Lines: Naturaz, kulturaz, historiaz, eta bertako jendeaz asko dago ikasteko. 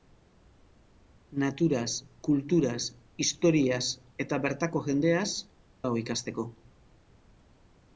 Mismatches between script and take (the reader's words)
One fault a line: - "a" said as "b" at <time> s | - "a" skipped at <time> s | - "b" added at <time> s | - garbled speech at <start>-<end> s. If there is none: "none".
- "asko" skipped at 5.3 s